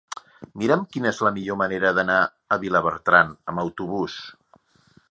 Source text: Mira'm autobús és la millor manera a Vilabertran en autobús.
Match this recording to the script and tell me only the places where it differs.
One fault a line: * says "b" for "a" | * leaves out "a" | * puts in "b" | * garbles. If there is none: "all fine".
* says "quina" for "autobús"
* puts in "d'anar"
* says "amb" for "en"